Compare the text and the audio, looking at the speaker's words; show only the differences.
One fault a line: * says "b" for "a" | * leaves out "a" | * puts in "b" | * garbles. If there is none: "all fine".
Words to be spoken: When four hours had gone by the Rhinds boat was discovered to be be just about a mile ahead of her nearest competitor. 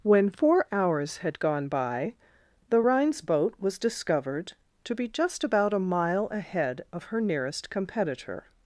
* leaves out "be"